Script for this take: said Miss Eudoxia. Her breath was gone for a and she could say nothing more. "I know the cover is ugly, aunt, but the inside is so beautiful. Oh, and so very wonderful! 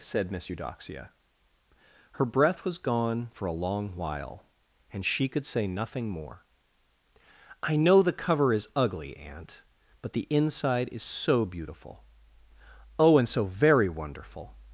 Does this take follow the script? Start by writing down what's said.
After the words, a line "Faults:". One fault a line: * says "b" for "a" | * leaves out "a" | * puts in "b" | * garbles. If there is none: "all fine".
said Miss Eudoxia. Her breath was gone for a long while, and she could say nothing more. "I know the cover is ugly, aunt, but the inside is so beautiful. Oh, and so very wonderful!
Faults:
* puts in "long while"